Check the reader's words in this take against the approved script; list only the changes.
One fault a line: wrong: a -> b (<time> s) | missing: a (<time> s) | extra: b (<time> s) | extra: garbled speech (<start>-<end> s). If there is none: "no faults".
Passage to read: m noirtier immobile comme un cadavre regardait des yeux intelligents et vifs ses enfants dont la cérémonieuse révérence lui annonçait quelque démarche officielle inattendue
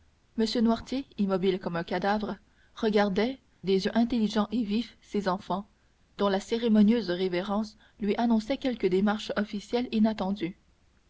no faults